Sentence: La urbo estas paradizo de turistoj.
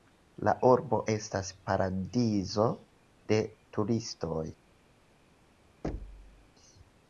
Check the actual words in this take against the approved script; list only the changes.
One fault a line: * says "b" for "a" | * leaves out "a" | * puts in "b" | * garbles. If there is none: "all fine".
all fine